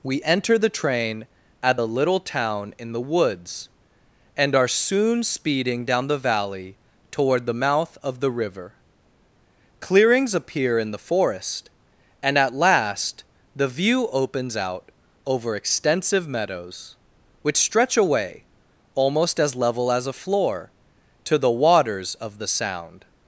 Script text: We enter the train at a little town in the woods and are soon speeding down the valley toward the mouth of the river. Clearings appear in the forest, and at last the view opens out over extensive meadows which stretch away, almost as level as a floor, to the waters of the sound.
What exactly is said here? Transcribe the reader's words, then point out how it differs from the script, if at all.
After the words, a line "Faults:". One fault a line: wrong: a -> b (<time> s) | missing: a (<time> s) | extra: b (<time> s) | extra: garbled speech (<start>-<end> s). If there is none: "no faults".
We enter the train at the little town in the woods and are soon speeding down the valley toward the mouth of the river. Clearings appear in the forest, and at last the view opens out over extensive meadows which stretch away, almost as level as a floor, to the waters of the sound.
Faults:
wrong: a -> the (1.8 s)